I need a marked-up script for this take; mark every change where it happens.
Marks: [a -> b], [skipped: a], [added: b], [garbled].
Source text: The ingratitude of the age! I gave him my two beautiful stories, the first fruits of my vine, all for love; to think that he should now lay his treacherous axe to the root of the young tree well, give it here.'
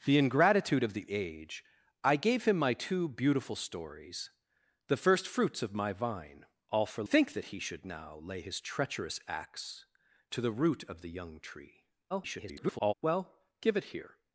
The ingratitude of the age! I gave him my two beautiful stories, the first fruits of my vine, all for [skipped: love; to] think that he should now lay his treacherous axe to the root of the young tree [garbled] well, give it here.'